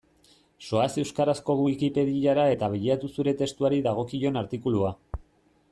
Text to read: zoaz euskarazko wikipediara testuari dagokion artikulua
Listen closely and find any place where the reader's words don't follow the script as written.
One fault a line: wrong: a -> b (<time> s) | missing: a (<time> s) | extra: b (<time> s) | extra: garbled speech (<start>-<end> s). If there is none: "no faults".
extra: eta bilatu zure (2.5 s)